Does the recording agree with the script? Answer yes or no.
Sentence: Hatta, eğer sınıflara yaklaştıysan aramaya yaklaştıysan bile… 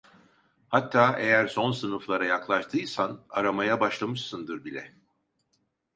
no